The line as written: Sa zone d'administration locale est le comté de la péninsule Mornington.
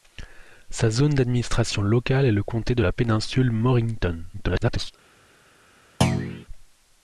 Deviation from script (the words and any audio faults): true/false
true